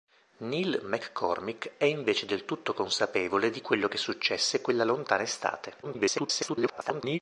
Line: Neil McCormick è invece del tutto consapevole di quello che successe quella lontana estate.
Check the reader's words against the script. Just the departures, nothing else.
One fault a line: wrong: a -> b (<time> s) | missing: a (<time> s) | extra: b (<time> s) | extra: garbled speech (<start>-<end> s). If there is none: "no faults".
extra: garbled speech (5.8-7.2 s)